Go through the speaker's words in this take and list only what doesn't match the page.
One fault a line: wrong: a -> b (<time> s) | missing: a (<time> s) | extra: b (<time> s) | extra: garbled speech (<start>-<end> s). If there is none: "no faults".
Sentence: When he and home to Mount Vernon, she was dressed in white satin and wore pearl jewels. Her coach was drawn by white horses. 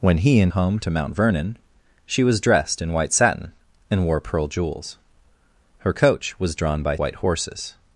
no faults